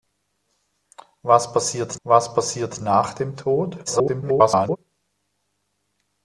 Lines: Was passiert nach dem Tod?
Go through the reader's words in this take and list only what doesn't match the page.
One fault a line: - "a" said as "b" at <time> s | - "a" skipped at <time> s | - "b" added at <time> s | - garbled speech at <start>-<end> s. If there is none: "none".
- "was passiert" added at 2.0 s
- garbled speech at 3.9-4.8 s